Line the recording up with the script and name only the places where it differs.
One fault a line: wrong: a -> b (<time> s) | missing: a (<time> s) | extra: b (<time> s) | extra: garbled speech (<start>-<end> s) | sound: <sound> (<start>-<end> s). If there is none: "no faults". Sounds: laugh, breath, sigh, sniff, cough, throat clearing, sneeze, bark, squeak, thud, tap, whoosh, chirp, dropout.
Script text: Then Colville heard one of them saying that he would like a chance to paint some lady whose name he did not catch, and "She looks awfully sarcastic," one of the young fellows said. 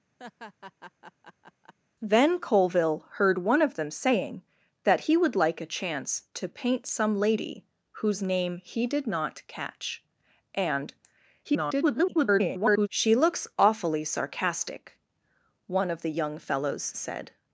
sound: laugh (0.2-1.7 s)
extra: garbled speech (11.4-12.9 s)